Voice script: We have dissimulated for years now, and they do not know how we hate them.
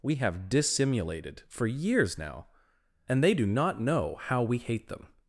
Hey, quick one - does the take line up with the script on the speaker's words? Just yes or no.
yes